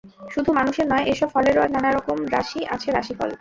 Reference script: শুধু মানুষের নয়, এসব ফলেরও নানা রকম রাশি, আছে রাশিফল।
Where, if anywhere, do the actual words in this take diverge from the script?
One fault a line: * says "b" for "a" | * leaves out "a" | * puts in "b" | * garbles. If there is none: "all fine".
all fine